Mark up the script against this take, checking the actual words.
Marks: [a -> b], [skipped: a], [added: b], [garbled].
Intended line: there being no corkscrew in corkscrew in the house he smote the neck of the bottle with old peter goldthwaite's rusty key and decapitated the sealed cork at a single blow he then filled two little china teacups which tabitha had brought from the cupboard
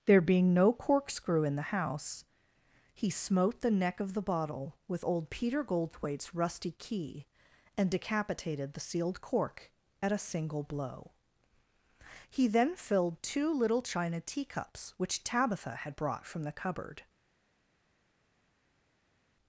there being no corkscrew in [skipped: corkscrew in] the house he smote the neck of the bottle with old peter goldthwaite's rusty key and decapitated the sealed cork at a single blow he then filled two little china teacups which tabitha had brought from the cupboard